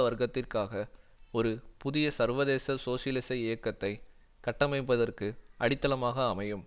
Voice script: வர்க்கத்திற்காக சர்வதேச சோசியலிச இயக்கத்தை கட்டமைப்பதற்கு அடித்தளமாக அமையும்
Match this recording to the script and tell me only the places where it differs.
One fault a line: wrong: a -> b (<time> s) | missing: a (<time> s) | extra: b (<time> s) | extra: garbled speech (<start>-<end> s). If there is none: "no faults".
extra: ஒரு புதிய (1.3 s)